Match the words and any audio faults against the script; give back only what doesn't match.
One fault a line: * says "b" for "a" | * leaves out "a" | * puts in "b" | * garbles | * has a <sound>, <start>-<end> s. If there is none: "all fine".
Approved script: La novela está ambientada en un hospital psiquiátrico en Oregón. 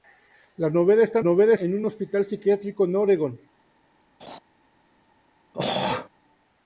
* says "novela" for "ambientada"
* has a laugh, 4.2-4.4 s
* has a throat clearing, 5.5-6.1 s